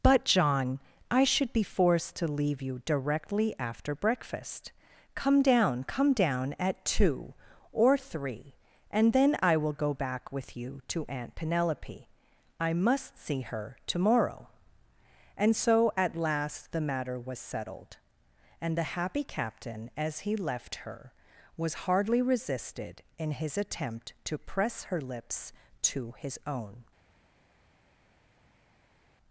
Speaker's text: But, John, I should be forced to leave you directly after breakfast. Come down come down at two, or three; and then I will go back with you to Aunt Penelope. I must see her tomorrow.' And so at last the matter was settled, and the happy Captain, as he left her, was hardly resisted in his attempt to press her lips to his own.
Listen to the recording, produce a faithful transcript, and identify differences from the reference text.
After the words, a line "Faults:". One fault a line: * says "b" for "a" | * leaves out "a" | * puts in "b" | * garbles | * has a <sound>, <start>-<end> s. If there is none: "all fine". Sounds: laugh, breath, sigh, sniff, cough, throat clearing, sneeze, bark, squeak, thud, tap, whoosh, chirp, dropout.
But, John, I should be forced to leave you directly after breakfast. Come down come down at two, or three; and then I will go back with you to Aunt Penelope. I must see her tomorrow.' And so at last the matter was settled, and the happy Captain, as he left her, was hardly resisted in his attempt to press her lips to his own.
Faults:
all fine